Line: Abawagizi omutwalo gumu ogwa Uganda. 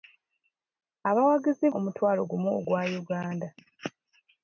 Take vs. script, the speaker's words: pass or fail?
pass